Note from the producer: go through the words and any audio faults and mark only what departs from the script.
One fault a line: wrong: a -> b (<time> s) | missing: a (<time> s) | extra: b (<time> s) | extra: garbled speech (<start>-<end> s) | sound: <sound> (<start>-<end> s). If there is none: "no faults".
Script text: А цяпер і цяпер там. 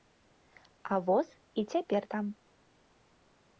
wrong: цяпер -> воз (1.0 s)